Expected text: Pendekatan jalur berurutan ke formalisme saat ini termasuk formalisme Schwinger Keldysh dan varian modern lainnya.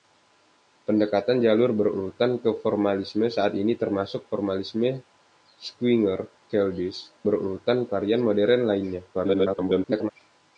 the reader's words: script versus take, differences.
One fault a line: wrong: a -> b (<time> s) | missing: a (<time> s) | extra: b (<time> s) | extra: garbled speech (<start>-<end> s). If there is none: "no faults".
wrong: dan -> berurutan (7.2 s)
extra: garbled speech (9.1-10.1 s)